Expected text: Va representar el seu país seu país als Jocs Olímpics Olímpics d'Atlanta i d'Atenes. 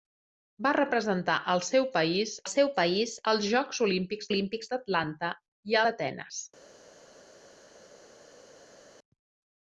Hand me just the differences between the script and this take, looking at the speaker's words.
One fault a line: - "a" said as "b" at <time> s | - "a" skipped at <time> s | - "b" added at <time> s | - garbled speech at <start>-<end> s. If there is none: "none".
none